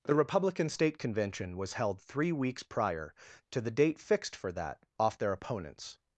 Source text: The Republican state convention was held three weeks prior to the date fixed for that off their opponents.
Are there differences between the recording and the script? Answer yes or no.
no